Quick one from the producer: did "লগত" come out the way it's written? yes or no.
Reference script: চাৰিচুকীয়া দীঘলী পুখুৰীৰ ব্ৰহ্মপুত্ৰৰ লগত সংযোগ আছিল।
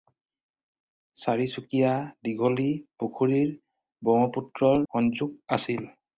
no